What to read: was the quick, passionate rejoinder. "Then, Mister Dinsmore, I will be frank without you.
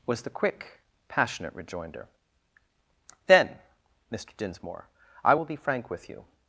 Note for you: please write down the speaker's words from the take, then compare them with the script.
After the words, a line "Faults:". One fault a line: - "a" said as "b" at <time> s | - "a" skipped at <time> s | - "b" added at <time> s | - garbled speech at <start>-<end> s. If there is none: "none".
was the quick, passionate rejoinder. "Then, Mister Dinsmore, I will be frank with you.
Faults:
- "without" said as "with" at 5.9 s